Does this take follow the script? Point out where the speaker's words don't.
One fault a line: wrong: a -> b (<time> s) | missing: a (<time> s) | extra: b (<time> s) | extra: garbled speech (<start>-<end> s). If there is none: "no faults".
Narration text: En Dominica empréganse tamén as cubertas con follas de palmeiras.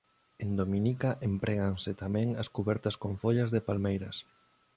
no faults